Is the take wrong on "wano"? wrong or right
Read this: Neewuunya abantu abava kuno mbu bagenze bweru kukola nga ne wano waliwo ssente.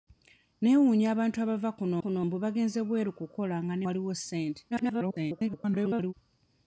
wrong